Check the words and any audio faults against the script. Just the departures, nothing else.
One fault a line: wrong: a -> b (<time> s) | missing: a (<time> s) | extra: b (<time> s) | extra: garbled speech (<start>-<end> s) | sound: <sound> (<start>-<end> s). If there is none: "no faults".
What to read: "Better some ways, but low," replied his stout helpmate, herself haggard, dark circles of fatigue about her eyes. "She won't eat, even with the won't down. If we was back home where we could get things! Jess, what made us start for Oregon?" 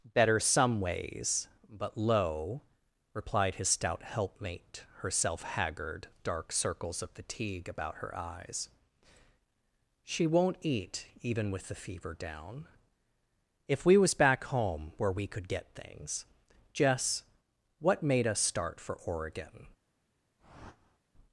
wrong: won't -> fever (11.8 s)
sound: whoosh (20.4-21.0 s)